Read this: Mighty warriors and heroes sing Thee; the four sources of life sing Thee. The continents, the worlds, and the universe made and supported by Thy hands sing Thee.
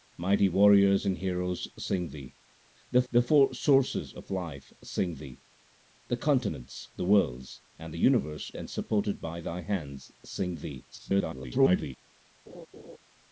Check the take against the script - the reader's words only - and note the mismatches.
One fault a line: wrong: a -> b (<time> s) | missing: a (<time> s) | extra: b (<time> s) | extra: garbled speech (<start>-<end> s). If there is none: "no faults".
extra: the (3.1 s)
missing: made (8.5 s)
extra: garbled speech (10.9-12.0 s)